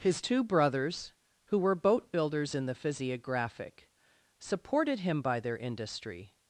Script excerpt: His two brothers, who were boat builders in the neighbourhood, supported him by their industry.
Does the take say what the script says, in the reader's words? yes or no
no